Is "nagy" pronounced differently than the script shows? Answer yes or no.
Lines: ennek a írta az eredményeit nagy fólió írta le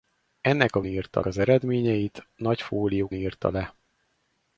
no